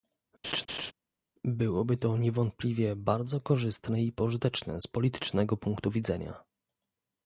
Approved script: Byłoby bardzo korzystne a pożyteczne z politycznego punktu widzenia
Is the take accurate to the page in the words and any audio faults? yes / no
no